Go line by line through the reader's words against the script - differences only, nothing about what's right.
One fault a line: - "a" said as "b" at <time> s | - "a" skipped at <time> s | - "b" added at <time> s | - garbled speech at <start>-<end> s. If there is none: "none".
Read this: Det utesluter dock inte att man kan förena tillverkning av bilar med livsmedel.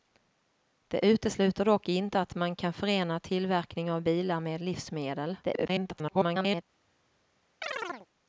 - garbled speech at 5.4-6.6 s